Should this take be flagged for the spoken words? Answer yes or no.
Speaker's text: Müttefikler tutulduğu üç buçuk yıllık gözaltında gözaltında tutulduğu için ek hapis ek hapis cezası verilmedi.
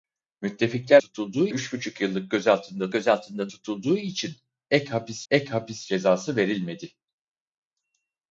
no